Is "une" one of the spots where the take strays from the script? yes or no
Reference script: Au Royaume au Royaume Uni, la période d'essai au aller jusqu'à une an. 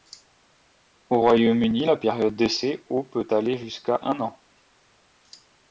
yes